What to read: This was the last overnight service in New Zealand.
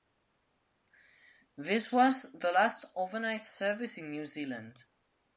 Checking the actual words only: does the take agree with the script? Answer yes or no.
yes